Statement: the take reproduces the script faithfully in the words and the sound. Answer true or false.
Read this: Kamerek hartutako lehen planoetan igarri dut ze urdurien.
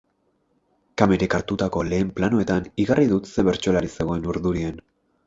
false